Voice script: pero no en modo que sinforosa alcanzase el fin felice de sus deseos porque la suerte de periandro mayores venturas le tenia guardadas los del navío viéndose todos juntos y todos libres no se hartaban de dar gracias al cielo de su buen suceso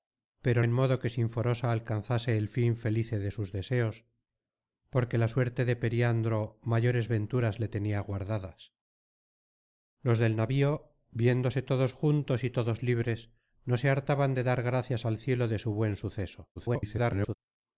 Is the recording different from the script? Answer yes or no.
yes